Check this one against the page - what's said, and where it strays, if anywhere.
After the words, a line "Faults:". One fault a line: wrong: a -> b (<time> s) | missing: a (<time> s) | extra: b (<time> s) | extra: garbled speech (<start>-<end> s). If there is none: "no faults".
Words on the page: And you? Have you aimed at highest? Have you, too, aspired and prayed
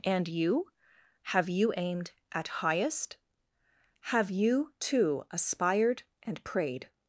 And you? Have you aimed at highest? Have you, too, aspired and prayed
Faults:
no faults